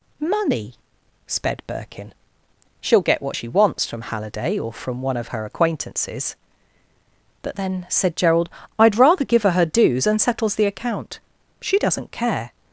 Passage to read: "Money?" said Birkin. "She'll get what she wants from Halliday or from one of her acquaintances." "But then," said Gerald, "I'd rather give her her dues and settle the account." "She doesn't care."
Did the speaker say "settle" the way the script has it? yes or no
no